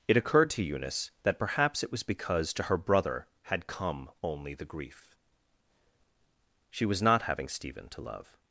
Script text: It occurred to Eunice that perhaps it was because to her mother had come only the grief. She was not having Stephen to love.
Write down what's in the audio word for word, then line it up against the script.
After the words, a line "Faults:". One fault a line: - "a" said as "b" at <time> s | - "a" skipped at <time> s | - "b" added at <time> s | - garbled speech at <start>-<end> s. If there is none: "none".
It occurred to Eunice that perhaps it was because to her brother had come only the grief. She was not having Stephen to love.
Faults:
- "mother" said as "brother" at 2.8 s